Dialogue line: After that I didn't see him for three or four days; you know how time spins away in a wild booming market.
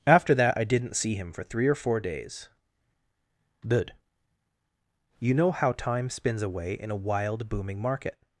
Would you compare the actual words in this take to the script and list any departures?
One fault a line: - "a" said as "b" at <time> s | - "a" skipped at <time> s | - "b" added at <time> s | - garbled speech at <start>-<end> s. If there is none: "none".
- "good" added at 3.7 s